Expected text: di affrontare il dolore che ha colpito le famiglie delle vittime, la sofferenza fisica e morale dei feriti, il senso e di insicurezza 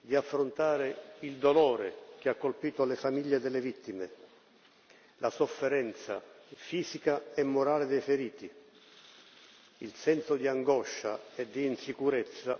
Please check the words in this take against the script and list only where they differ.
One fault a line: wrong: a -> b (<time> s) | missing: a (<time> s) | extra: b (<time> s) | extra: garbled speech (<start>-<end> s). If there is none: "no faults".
extra: di angoscia (10.3 s)